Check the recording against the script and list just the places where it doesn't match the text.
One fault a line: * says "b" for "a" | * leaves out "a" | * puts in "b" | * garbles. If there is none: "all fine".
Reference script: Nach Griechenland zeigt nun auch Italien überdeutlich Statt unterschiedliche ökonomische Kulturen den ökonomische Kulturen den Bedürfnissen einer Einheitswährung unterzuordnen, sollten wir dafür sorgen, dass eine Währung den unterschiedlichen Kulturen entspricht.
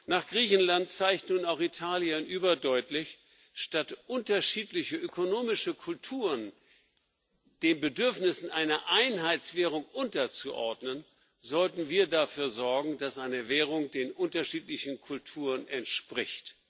* leaves out "ökonomische Kulturen den"